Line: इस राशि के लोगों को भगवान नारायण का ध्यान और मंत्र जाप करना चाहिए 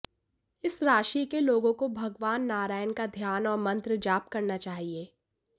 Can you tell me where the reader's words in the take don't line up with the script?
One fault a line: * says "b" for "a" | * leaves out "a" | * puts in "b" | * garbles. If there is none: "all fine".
all fine